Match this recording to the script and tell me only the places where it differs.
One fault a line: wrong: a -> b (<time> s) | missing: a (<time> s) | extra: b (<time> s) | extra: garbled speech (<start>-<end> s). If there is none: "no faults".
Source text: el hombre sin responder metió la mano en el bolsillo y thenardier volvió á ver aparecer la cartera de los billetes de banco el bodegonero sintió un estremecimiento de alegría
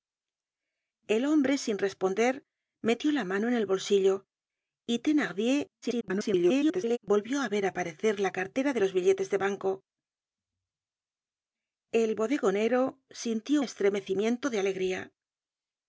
extra: garbled speech (5.8-7.0 s)
missing: un (13.6 s)